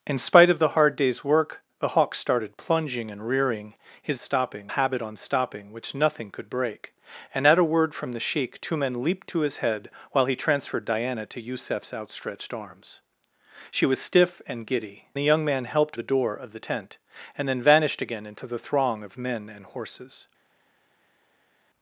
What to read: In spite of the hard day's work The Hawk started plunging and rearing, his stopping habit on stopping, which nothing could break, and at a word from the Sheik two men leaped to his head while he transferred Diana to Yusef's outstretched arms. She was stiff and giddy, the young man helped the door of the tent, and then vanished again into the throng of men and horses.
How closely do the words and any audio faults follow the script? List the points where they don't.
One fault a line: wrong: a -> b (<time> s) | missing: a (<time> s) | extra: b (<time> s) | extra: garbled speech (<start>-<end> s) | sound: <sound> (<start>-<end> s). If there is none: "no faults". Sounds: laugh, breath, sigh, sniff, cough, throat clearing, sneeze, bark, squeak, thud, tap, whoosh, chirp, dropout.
no faults